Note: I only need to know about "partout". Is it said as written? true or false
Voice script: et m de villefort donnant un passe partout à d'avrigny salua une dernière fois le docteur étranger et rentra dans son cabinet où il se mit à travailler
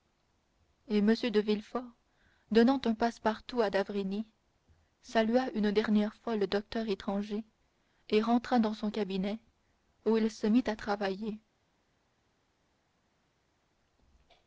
true